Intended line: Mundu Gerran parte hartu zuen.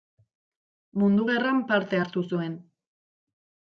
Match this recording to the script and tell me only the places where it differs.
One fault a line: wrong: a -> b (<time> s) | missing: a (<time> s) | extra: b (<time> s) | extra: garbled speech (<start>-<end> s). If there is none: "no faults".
no faults